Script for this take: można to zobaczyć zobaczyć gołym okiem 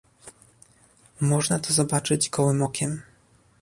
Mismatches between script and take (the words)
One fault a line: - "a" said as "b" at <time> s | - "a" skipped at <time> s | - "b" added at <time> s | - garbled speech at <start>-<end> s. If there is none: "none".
- "zobaczyć" skipped at 2.3 s